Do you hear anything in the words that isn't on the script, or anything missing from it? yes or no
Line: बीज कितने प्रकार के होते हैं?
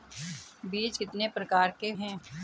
yes